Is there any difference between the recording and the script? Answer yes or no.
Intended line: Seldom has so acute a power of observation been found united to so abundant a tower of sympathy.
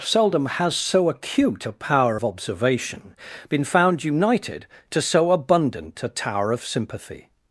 no